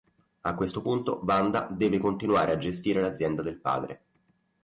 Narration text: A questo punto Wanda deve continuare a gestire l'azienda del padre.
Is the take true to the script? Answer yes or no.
yes